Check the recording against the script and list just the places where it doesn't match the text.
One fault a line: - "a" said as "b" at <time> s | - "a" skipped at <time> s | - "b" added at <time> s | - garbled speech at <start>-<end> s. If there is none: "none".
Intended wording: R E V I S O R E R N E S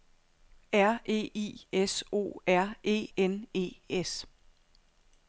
- "V" skipped at 1.3 s
- "R" skipped at 3.1 s